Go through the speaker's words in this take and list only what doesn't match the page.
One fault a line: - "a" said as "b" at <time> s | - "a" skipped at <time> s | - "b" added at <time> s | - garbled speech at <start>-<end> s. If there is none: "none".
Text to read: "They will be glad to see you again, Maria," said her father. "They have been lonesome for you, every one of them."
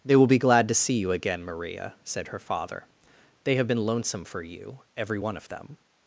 none